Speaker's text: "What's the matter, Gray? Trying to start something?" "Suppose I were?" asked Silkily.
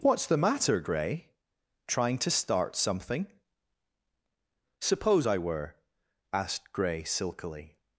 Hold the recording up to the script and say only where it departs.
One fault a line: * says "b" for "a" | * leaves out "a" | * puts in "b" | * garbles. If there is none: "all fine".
* puts in "Gray"